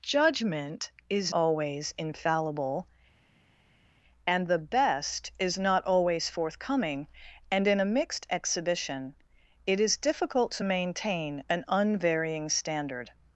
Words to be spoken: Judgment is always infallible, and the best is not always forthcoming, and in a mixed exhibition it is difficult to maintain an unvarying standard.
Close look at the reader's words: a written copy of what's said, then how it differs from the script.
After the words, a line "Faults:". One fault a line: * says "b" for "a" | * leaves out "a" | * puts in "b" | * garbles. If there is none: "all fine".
Judgment is always infallible, and the best is not always forthcoming, and in a mixed exhibition it is difficult to maintain an unvarying standard.
Faults:
all fine